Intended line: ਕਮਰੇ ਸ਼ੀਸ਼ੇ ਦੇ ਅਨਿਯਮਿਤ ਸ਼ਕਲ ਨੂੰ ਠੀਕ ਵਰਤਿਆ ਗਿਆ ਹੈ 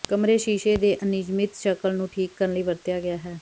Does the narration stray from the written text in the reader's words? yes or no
yes